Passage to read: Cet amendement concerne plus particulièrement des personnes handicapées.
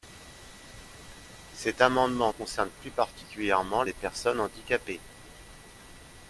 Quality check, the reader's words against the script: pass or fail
pass